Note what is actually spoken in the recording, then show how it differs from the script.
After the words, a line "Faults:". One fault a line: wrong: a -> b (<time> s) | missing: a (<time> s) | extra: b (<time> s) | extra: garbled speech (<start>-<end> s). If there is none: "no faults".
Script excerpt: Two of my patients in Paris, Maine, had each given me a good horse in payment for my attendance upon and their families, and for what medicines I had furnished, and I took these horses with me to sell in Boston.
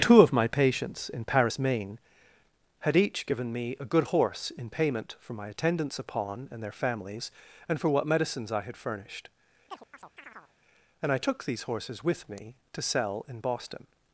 Two of my patients in Paris, Maine, had each given me a good horse in payment for my attendance upon and their families, and for what medicines I had furnished, and I took these horses with me to sell in Boston.
Faults:
no faults